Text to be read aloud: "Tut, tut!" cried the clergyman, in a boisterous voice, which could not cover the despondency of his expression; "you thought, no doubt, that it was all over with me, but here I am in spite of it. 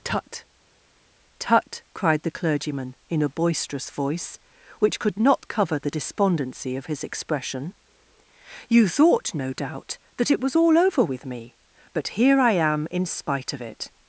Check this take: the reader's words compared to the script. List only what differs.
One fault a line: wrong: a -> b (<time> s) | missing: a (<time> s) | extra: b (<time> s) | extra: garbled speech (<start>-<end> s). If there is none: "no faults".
no faults